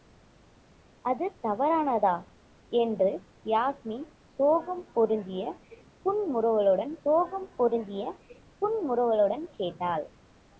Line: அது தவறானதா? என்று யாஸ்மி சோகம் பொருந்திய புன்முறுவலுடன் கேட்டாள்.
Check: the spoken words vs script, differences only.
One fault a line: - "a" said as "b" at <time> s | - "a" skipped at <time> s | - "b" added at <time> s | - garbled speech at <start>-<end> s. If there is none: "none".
- "சோகம் பொருந்திய புன்முறுவலுடன்" added at 7.1 s